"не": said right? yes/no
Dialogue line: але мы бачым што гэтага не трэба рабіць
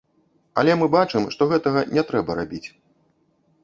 yes